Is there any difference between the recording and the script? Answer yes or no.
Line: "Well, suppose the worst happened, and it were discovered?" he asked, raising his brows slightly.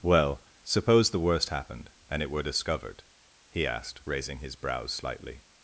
no